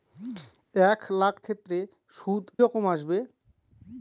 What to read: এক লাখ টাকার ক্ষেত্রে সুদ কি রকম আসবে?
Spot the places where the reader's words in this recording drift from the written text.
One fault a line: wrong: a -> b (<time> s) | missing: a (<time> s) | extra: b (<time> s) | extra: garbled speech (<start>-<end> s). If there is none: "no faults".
missing: টাকার (1.4 s)
missing: কি (2.4 s)